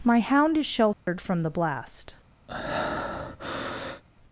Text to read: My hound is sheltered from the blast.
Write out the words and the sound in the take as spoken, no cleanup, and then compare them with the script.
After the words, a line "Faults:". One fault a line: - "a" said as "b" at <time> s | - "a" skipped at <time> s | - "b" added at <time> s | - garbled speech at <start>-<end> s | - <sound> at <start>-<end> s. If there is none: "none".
My hound is sheltered from the blast.
Faults:
- dropout at 0.9-1.1 s
- breath at 2.5-4.0 s